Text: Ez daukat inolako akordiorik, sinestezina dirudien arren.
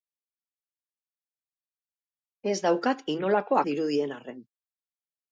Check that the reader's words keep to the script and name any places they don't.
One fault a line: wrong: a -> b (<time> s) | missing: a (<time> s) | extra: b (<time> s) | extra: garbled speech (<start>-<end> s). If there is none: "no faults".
missing: akordiorik sinestezina (3.6 s)